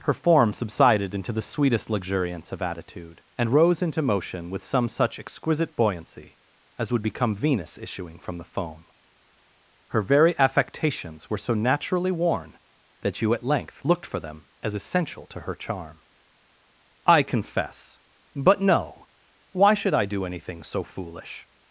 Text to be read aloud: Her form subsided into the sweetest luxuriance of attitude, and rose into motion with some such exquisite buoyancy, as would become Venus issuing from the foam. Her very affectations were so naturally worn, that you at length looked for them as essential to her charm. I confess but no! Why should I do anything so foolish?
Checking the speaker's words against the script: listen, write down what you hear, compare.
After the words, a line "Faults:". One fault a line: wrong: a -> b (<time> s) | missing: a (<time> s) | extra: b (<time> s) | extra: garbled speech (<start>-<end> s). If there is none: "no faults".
Her form subsided into the sweetest luxuriance of attitude, and rose into motion with some such exquisite buoyancy, as would become Venus issuing from the foam. Her very affectations were so naturally worn, that you at length looked for them as essential to her charm. I confess but no! Why should I do anything so foolish?
Faults:
no faults